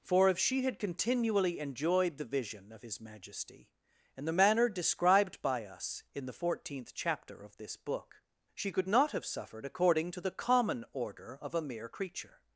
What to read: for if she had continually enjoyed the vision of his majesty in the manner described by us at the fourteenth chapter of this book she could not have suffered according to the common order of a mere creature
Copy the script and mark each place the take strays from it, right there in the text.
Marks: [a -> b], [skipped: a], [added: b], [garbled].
for if she had continually enjoyed the vision of his majesty in the manner described by us [at -> in] the fourteenth chapter of this book she could not have suffered according to the common order of a mere creature